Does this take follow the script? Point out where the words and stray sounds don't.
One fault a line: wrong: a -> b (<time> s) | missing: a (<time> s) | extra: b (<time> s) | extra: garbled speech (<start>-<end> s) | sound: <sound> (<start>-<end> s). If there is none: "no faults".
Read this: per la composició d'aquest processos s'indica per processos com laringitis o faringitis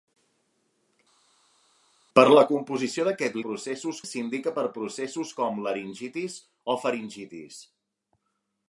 no faults